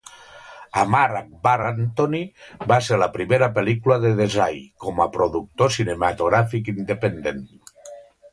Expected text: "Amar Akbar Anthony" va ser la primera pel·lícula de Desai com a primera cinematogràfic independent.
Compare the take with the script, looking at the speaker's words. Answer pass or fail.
fail